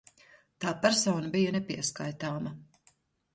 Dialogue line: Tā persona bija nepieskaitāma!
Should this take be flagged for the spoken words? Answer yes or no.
no